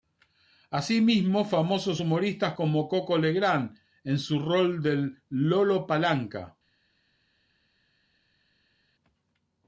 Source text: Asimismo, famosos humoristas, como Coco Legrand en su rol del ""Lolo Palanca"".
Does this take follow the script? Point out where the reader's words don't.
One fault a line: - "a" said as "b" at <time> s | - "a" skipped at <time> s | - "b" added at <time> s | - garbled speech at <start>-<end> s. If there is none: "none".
none